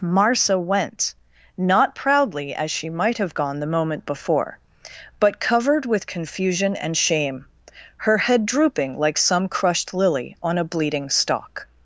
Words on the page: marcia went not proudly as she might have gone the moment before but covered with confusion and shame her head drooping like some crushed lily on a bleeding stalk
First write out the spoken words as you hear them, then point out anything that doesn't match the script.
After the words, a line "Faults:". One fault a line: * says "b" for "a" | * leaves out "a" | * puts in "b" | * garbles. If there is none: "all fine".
marcia went not proudly as she might have gone the moment before but covered with confusion and shame her head drooping like some crushed lily on a bleeding stalk
Faults:
all fine